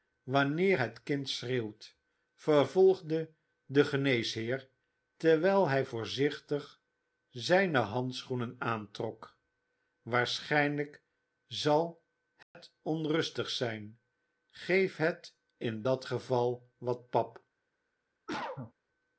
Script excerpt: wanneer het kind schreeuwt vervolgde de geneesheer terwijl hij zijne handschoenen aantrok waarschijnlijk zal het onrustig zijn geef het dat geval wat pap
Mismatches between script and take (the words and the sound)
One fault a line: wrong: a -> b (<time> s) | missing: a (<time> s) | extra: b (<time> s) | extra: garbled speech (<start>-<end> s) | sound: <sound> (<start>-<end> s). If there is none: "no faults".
extra: voorzichtig (5.8 s)
sound: dropout (12.4-12.5 s)
extra: in (15.6 s)
sound: cough (18.3-18.7 s)